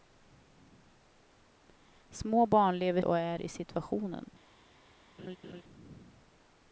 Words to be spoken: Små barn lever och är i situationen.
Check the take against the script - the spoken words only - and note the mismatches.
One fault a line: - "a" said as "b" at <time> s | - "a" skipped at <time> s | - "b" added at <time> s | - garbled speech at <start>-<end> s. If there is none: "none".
none